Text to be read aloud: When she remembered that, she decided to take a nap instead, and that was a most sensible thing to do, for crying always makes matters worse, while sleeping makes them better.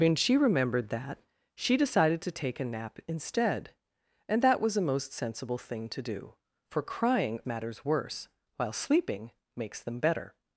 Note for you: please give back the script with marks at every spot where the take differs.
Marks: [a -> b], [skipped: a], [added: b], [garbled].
When she remembered that, she decided to take a nap instead, and that was a most sensible thing to do, for crying [skipped: always makes] matters worse, while sleeping makes them better.